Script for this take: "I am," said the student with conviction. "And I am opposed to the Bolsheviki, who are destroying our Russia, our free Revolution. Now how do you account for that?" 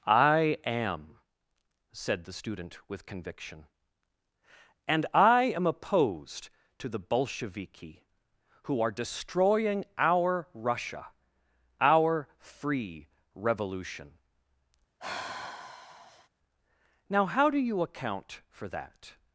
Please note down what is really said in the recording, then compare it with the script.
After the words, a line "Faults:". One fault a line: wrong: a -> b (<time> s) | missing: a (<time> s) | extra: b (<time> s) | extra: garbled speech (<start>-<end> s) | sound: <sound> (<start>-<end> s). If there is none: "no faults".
"I am," said the student with conviction. "And I am opposed to the Bolsheviki, who are destroying our Russia, our free Revolution. Now how do you account for that?"
Faults:
sound: sigh (15.0-16.3 s)